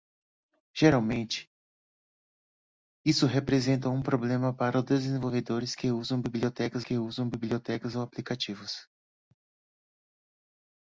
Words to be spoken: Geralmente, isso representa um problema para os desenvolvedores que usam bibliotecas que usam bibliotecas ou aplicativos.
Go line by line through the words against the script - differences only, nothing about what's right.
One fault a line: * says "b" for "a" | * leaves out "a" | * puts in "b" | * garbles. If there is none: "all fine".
all fine